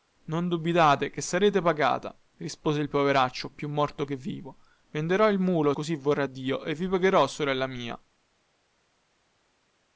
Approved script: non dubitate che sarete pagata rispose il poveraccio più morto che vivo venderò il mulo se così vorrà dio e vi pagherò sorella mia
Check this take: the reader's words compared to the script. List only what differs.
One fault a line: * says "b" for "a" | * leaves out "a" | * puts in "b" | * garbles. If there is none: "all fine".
* leaves out "se"